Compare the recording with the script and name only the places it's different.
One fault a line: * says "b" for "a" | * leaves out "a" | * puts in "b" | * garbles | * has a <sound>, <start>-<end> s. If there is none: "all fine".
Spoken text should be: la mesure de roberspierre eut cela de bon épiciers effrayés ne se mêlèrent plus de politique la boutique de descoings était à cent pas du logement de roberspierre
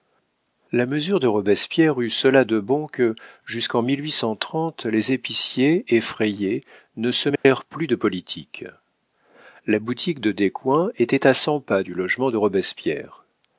* puts in "que jusqu'en les"
* has a dropout, 7.4-7.4 s